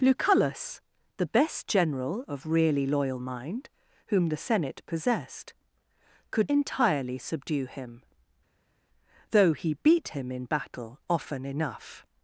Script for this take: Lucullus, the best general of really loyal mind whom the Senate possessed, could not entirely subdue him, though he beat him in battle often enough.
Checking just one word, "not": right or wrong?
wrong